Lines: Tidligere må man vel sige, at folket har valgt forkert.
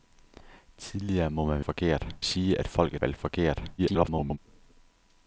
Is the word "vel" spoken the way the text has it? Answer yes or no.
no